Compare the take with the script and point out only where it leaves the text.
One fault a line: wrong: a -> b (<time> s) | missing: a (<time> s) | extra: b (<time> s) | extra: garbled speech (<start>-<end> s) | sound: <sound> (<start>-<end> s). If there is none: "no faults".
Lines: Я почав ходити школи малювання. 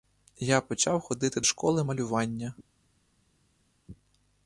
no faults